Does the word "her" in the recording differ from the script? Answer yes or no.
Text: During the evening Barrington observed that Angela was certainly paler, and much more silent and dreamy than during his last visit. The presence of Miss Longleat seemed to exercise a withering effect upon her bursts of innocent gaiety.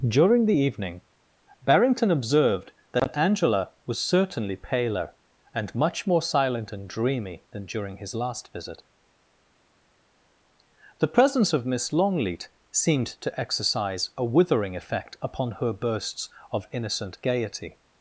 no